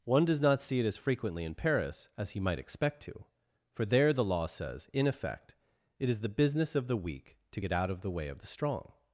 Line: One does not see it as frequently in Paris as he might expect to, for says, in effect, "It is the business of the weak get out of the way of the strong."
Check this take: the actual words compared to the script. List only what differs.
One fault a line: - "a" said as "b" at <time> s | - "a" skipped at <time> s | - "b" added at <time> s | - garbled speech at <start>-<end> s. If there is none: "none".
- "there the law" added at 3.9 s
- "to" added at 7.5 s